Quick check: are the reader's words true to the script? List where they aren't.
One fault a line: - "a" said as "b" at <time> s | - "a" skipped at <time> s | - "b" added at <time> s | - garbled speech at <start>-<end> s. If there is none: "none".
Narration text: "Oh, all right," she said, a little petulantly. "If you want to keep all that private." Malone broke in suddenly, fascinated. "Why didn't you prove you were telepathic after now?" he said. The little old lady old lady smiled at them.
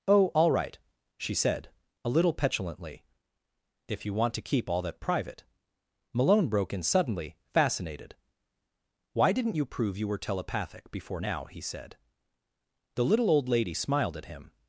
- "after" said as "before" at 10.9 s
- "old lady" skipped at 13.7 s
- "them" said as "him" at 14.2 s